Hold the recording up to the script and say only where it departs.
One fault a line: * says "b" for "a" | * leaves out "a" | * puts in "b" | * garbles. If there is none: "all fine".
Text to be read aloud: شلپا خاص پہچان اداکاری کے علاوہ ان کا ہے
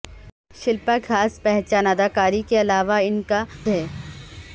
all fine